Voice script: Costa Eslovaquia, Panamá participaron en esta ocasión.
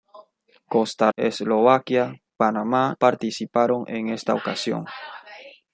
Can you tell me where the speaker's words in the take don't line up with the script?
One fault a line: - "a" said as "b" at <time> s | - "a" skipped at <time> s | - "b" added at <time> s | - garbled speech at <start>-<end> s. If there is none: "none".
none